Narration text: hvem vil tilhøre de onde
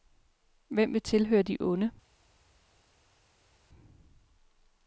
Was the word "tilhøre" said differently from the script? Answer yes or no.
no